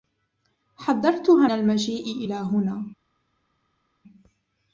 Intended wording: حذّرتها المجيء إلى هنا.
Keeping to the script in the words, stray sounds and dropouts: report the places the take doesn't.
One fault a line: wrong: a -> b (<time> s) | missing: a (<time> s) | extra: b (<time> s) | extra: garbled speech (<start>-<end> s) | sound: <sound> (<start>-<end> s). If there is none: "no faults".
no faults